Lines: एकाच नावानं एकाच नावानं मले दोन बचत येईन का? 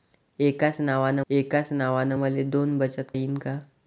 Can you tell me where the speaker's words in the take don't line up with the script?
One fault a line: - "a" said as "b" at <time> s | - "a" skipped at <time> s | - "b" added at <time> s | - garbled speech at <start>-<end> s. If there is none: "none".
none